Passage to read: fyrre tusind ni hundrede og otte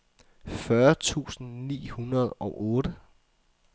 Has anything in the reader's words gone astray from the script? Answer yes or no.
no